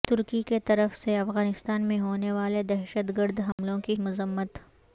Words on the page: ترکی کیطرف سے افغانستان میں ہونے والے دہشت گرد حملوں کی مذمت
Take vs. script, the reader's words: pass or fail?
pass